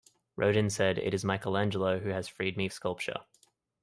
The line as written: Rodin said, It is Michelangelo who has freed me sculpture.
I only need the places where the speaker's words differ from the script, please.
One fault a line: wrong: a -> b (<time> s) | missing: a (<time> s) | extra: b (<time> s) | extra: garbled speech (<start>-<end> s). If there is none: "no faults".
no faults